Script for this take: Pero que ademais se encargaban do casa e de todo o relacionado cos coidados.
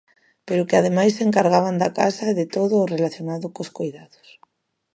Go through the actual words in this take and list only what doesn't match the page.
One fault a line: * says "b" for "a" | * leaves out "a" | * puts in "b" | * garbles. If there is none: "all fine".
* says "da" for "do"